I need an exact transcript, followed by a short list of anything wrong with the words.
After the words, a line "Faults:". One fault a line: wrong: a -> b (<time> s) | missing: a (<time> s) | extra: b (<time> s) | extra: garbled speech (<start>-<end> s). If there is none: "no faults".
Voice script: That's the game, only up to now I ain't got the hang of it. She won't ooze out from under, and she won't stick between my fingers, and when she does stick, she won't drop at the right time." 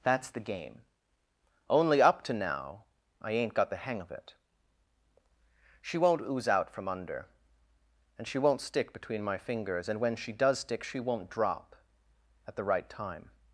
That's the game, only up to now I ain't got the hang of it. She won't ooze out from under, and she won't stick between my fingers, and when she does stick, she won't drop at the right time."
Faults:
no faults